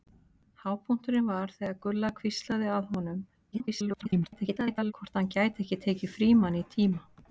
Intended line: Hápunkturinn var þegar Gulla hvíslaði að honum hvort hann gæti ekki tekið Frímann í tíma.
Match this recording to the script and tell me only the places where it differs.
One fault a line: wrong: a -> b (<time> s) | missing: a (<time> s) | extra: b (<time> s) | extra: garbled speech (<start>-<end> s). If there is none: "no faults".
extra: garbled speech (3.5-4.9 s)